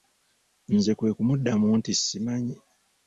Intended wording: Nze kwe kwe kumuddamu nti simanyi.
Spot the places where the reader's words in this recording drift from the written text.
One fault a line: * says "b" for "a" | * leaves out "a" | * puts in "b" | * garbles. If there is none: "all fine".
* leaves out "kwe"